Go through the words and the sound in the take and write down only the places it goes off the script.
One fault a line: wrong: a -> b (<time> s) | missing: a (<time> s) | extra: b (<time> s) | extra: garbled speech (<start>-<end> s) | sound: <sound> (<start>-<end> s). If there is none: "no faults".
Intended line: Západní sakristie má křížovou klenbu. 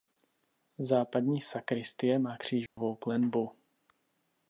sound: dropout (2.7-2.8 s)